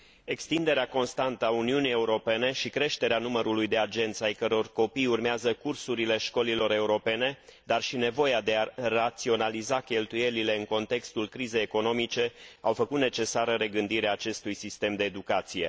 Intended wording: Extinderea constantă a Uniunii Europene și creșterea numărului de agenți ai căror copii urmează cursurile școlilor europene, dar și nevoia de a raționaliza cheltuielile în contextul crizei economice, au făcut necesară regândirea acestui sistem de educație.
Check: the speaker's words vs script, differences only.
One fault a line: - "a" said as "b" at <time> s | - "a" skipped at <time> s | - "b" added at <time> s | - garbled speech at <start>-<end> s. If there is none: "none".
none